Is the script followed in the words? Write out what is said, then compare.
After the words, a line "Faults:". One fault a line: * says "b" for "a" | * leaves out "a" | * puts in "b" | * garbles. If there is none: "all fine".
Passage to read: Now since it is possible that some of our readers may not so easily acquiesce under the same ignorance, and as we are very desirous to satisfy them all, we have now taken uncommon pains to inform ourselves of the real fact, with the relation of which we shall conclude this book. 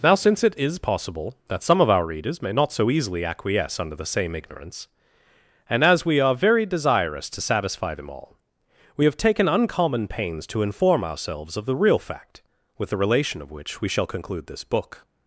Now since it is possible that some of our readers may not so easily acquiesce under the same ignorance, and as we are very desirous to satisfy them all, we have taken uncommon pains to inform ourselves of the real fact, with the relation of which we shall conclude this book.
Faults:
* leaves out "now"